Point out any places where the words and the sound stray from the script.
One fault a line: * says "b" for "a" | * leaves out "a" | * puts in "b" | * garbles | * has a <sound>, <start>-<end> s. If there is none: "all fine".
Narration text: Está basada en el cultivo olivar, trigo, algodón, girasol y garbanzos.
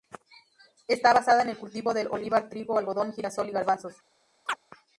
* puts in "del"
* has a chirp, 4.5-4.6 s